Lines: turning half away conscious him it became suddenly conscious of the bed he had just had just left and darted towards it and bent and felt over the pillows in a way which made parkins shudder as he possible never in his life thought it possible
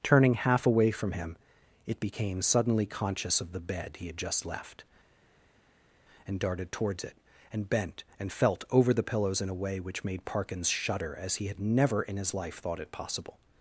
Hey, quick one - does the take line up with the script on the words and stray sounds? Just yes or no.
no